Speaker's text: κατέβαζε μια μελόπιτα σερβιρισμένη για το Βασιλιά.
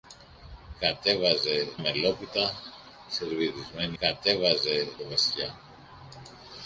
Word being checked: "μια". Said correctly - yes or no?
no